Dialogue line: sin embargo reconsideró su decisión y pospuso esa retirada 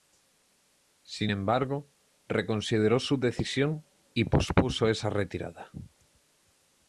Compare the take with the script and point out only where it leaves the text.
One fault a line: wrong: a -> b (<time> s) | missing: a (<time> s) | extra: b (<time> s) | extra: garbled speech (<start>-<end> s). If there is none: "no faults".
no faults